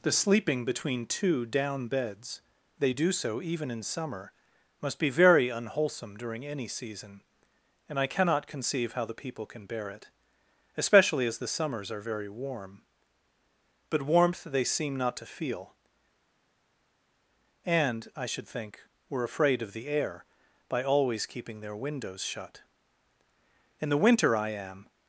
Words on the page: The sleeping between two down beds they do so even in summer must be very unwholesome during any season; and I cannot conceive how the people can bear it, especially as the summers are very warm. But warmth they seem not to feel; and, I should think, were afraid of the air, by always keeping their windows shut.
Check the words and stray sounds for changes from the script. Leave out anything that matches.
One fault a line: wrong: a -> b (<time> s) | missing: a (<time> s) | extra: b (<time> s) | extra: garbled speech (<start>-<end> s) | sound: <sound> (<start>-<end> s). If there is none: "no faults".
extra: In the winter I am (23.8 s)